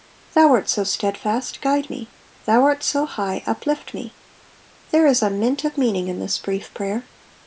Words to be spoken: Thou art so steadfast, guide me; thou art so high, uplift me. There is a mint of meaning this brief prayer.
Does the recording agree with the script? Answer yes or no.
no